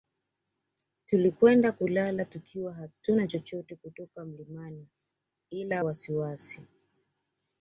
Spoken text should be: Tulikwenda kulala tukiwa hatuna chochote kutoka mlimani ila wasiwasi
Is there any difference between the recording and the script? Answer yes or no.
no